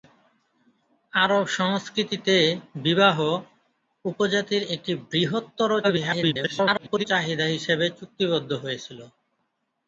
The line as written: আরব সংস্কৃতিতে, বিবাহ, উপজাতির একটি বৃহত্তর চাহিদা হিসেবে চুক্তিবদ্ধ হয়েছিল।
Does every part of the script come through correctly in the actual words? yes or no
no